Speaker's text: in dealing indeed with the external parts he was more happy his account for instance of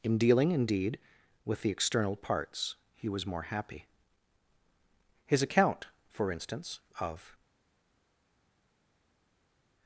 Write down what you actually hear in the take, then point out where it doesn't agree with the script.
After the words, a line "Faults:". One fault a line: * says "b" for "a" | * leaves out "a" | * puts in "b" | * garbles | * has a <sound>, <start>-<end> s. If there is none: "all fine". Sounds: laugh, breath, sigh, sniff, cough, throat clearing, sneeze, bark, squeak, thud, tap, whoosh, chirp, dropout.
in dealing indeed with the external parts he was more happy his account for instance of
Faults:
all fine